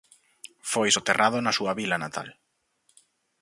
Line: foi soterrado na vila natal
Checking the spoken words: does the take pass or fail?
fail